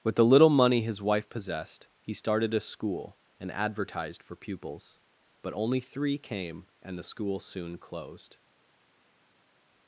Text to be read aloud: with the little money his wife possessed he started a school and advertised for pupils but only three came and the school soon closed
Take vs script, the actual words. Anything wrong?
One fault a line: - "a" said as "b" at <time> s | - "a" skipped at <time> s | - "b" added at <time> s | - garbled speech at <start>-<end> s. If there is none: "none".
none